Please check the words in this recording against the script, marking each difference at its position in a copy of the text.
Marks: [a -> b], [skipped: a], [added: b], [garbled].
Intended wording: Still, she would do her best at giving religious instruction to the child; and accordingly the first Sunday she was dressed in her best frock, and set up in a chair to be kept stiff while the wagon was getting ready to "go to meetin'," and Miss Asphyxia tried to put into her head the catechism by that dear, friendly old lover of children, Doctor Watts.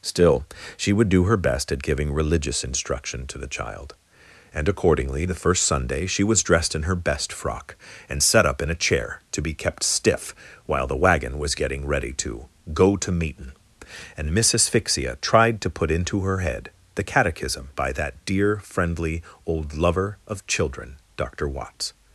Still, she would do her best at giving religious instruction to the child; and accordingly the first Sunday she was dressed in her best frock, and set up in a chair to be kept stiff while the wagon was getting ready to "go to meetin'," and Miss Asphyxia tried to put into her head the catechism by that dear, friendly old lover of children, Doctor Watts.